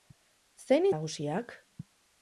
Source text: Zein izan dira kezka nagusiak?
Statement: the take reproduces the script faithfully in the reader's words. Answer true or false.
false